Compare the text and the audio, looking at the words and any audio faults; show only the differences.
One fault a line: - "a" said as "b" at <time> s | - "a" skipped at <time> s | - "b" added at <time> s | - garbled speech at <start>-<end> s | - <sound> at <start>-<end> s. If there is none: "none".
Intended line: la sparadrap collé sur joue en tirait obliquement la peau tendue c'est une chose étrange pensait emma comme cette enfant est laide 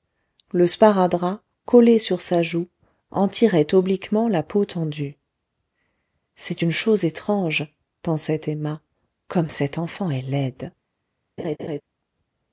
- "la" said as "le" at 0.5 s
- "sa" added at 2.2 s
- laugh at 11.4-11.8 s